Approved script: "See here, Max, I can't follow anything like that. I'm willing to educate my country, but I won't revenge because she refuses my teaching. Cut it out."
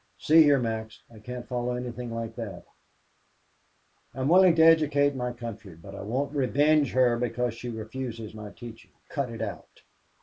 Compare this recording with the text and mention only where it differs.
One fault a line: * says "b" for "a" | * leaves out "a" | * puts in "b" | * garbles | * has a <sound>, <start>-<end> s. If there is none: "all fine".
* puts in "her"